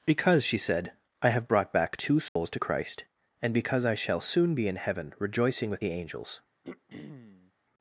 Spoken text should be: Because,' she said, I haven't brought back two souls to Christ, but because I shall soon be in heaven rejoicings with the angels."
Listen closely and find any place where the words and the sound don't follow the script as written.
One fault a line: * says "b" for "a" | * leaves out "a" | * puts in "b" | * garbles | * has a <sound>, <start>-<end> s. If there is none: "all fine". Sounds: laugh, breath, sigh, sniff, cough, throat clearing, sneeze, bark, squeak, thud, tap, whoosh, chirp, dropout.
* says "have" for "haven't"
* has a dropout, 2.3-2.4 s
* says "and" for "but"
* says "rejoicing" for "rejoicings"
* has a throat clearing, 6.6-7.5 s